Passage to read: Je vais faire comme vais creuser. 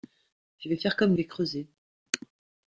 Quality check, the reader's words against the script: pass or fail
pass